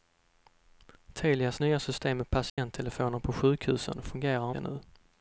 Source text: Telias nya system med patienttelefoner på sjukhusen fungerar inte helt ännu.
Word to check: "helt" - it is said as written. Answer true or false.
false